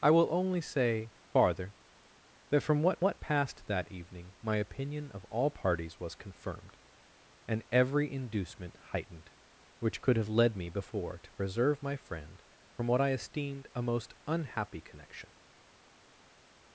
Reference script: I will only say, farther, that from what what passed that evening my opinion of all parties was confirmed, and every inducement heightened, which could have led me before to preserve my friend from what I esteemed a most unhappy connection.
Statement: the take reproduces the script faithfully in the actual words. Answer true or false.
true